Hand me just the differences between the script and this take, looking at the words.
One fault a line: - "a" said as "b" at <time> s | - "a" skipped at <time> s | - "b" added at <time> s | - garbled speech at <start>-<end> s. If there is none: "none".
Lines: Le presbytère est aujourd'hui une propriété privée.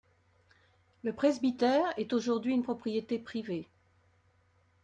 none